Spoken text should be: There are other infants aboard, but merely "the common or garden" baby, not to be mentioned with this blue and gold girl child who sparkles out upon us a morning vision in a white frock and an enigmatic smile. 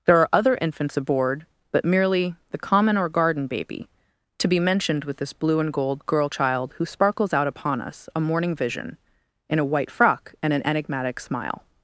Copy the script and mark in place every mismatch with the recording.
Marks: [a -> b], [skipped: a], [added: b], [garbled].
There are other infants aboard, but merely "the common or garden" baby, [skipped: not] to be mentioned with this blue and gold girl child who sparkles out upon us a morning vision in a white frock and an enigmatic smile.